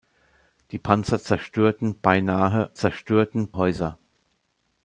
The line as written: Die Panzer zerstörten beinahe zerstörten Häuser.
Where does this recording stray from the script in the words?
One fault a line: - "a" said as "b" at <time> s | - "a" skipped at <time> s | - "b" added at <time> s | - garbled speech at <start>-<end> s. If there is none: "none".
none